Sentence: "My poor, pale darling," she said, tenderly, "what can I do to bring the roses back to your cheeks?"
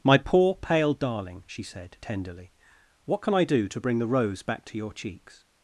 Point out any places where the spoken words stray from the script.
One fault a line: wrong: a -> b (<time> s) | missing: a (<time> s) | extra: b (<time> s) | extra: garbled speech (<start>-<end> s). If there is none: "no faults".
wrong: roses -> rose (4.1 s)